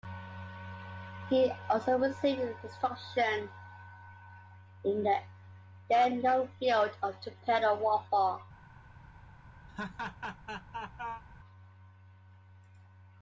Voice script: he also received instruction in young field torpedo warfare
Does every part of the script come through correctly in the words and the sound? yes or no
no